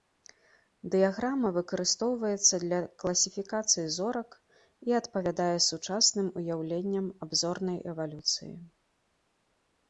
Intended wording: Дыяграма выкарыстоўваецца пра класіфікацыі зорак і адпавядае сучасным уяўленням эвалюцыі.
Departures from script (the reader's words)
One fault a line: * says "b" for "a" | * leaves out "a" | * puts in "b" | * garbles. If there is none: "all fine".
* says "для" for "пра"
* puts in "аб зорнай"